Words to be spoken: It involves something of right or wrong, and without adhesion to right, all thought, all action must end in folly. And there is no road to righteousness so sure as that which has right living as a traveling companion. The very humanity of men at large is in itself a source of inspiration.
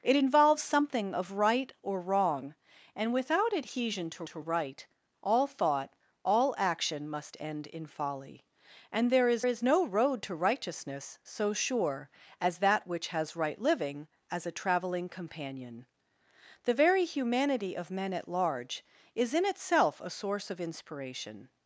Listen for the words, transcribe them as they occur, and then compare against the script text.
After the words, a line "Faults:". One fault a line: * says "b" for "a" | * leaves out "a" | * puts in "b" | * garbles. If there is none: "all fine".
It involves something of right or wrong, and without adhesion to to right, all thought, all action must end in folly. And there is is no road to righteousness so sure as that which has right living as a traveling companion. The very humanity of men at large is in itself a source of inspiration.
Faults:
* puts in "to"
* puts in "is"